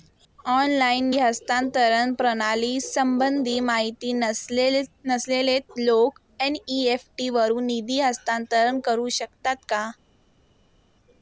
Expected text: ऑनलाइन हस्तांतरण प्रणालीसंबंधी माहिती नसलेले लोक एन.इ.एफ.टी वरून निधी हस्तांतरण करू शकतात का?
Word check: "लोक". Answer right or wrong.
right